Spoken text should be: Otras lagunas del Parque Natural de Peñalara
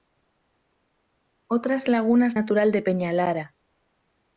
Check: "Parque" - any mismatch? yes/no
yes